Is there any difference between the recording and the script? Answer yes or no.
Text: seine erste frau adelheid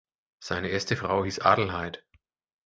yes